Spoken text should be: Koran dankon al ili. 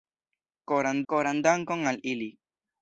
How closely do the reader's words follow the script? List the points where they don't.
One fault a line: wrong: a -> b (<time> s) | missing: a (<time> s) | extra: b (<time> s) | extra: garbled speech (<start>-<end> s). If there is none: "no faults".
extra: koran (1.1 s)